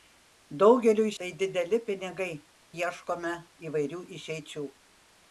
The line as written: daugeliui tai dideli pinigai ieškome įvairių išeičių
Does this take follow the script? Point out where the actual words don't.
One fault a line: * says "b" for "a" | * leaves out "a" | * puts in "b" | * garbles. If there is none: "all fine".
all fine